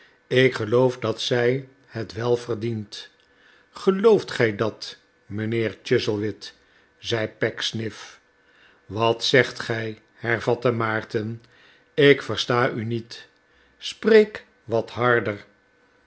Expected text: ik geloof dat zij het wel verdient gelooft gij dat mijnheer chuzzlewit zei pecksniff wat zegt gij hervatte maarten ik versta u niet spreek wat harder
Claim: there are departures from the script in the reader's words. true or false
false